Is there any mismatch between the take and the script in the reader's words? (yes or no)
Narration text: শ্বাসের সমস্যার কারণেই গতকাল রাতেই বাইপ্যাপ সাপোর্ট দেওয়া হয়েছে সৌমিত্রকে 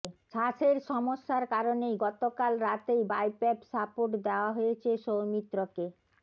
no